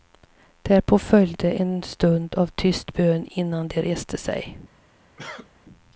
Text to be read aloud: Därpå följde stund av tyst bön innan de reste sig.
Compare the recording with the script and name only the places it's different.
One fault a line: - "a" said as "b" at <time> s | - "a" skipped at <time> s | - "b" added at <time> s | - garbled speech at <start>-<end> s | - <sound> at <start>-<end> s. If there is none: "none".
- "en" added at 1.5 s
- cough at 5.2-5.5 s